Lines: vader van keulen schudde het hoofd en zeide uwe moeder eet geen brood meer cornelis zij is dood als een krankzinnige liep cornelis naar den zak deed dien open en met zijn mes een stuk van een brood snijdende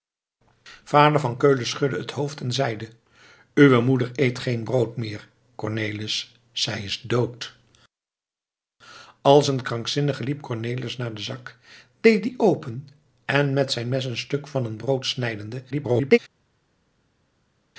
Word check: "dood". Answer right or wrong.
right